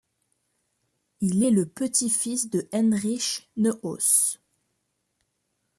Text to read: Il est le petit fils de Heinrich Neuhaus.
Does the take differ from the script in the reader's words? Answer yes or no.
no